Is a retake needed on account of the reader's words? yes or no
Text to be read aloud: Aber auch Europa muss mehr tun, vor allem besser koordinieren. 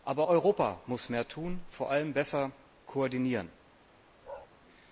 yes